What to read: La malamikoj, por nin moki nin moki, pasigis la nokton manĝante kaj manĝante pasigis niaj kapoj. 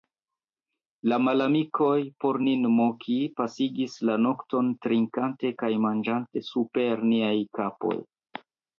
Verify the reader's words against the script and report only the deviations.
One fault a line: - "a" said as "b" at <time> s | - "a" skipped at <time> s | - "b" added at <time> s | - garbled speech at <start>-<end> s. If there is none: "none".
- "nin moki" skipped at 3.2 s
- "manĝante" said as "trinkante" at 4.9 s
- "pasigis" said as "super" at 6.5 s